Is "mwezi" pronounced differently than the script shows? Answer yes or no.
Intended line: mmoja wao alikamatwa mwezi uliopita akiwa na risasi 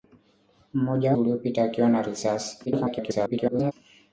yes